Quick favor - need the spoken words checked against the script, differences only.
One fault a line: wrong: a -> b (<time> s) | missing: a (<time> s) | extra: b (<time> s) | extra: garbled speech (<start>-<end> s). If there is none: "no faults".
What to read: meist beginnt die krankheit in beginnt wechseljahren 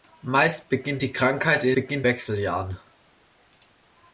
no faults